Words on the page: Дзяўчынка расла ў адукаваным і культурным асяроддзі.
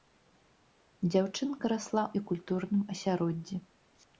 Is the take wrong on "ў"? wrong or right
wrong